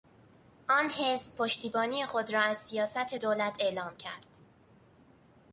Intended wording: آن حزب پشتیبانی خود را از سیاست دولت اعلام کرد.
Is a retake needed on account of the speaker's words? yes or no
no